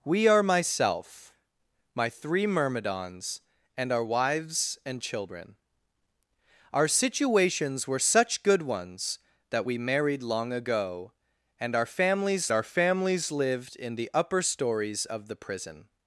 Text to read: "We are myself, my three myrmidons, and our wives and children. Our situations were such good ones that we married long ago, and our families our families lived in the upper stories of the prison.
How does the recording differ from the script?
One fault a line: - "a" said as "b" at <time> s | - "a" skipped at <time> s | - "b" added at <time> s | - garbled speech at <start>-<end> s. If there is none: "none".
none